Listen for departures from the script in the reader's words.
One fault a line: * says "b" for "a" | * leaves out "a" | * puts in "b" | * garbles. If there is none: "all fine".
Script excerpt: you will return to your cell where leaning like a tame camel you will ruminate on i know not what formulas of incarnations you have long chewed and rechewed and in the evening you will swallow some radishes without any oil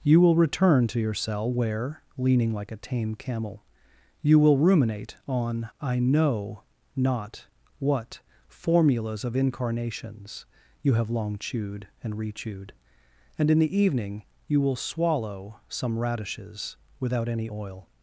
all fine